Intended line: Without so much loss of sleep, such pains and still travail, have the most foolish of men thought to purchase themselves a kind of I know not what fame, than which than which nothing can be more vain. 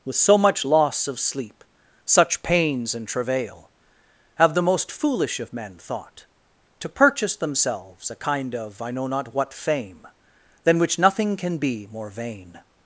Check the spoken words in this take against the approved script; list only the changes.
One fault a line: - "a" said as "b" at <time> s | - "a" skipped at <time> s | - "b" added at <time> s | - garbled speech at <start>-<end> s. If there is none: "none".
- "Without" said as "With" at 0.0 s
- "still" skipped at 3.1 s
- "than which" skipped at 11.0 s